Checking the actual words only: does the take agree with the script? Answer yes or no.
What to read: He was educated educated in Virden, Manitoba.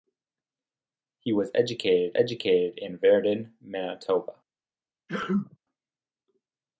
yes